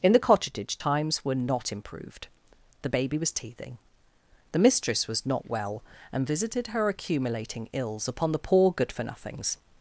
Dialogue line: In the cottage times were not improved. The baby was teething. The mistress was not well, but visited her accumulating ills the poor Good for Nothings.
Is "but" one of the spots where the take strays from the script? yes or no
yes